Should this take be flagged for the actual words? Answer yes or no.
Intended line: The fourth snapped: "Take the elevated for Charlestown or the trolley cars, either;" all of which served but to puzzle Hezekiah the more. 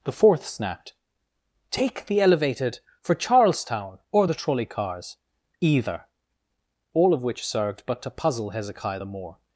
no